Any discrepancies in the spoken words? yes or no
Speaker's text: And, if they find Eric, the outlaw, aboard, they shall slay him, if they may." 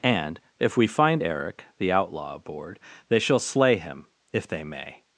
yes